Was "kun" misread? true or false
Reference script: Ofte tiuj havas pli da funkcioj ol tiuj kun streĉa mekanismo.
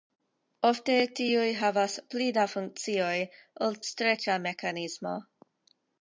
true